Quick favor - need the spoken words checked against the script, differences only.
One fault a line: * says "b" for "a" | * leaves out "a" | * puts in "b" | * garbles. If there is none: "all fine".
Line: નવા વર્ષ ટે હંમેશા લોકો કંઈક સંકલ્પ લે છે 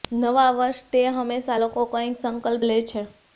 all fine